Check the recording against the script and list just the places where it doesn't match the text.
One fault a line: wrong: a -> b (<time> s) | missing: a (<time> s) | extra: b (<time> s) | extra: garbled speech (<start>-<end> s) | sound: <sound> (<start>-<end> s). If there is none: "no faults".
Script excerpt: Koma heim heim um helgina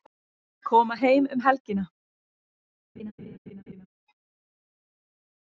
missing: heim (1.3 s)
sound: laugh (3.0-3.9 s)